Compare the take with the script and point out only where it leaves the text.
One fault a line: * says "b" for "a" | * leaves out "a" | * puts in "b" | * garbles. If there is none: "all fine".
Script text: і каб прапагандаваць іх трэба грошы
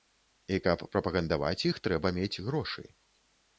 * puts in "мець"